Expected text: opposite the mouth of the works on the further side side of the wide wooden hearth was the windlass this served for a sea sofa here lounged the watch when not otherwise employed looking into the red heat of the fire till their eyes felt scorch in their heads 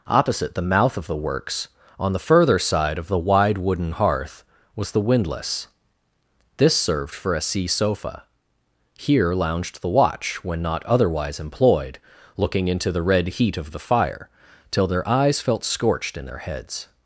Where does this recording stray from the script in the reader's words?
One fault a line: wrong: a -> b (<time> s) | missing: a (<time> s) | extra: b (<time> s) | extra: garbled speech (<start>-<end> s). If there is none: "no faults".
missing: side (3.0 s)
wrong: scorch -> scorched (15.6 s)